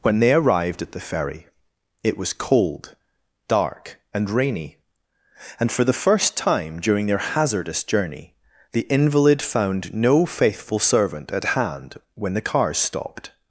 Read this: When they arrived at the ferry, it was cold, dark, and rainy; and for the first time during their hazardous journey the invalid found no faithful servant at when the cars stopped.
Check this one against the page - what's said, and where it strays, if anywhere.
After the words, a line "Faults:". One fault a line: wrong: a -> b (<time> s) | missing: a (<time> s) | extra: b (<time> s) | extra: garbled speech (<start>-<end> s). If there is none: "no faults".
When they arrived at the ferry, it was cold, dark, and rainy; and for the first time during their hazardous journey the invalid found no faithful servant at hand when the cars stopped.
Faults:
extra: hand (11.4 s)